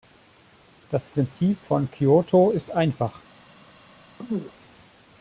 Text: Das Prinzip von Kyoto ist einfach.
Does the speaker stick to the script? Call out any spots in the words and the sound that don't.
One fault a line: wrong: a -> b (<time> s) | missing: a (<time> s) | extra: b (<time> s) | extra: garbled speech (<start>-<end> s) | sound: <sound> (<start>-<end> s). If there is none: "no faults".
sound: throat clearing (4.2-4.5 s)